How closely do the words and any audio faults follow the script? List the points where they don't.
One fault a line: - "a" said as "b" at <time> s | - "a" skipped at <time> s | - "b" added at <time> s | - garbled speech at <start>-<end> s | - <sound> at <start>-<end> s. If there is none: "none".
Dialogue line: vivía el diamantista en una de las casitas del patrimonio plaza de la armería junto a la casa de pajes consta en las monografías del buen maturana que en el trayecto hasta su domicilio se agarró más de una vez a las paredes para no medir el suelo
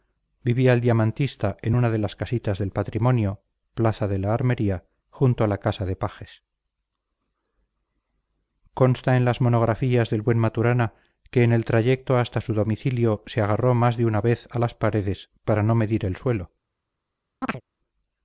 - chirp at 17.4-17.6 s